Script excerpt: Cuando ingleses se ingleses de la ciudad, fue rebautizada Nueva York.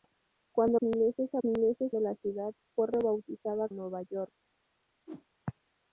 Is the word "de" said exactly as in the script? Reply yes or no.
yes